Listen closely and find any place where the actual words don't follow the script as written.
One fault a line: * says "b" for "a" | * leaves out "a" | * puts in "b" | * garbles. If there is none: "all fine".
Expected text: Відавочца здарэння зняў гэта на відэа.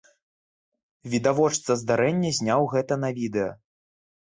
all fine